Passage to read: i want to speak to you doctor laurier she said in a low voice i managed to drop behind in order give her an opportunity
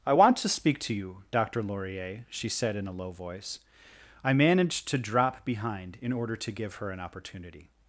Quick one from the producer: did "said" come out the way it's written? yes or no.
yes